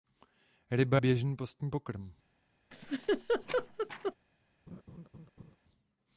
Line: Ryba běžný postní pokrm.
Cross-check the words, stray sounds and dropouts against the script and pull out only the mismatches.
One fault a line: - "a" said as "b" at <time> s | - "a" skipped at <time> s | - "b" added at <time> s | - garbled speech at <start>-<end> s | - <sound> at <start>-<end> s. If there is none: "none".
- laugh at 2.7-4.1 s
- laugh at 4.7-5.6 s